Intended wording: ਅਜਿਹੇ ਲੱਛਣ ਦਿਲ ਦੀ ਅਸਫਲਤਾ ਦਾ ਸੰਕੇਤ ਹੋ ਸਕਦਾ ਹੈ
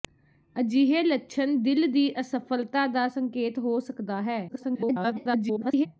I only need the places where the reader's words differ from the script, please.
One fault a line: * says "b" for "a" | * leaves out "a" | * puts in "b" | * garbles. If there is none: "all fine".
* garbles